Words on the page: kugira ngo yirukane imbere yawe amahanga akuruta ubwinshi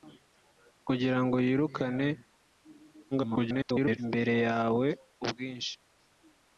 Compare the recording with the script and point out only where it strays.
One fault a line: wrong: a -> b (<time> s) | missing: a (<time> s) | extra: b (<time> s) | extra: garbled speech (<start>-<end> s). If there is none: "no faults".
extra: garbled speech (3.1-4.0 s)
missing: amahanga akuruta (4.9 s)